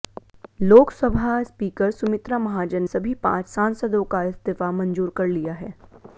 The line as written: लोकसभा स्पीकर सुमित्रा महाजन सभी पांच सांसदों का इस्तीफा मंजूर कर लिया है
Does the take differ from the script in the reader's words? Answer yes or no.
no